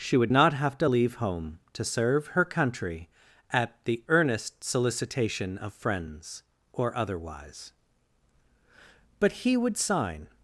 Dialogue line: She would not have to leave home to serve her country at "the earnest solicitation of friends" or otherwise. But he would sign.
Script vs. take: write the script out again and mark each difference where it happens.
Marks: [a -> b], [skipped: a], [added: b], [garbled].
She would not have to leave home to serve her country at "the earnest solicitation of friends" or otherwise. But he would sign.